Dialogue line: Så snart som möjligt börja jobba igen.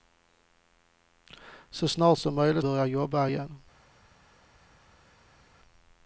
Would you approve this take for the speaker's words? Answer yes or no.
yes